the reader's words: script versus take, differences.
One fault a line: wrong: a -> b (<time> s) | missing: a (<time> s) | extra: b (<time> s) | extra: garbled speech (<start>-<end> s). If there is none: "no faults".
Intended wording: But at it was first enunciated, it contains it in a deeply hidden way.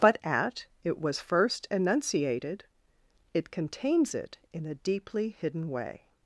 no faults